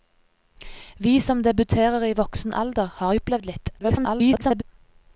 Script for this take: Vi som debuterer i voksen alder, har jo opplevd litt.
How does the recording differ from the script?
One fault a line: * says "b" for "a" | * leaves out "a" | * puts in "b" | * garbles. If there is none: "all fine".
* leaves out "jo"
* garbles